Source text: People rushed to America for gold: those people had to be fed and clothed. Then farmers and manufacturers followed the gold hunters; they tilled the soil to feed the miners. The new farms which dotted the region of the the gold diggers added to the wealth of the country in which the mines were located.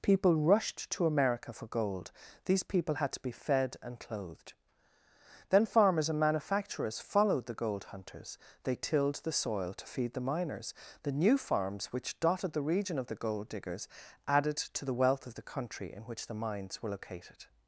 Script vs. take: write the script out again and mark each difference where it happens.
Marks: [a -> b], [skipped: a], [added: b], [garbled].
People rushed to America for gold: [those -> these] people had to be fed and clothed. Then farmers and manufacturers followed the gold hunters; they tilled the soil to feed the miners. The new farms which dotted the region of the [skipped: the] gold diggers added to the wealth of the country in which the mines were located.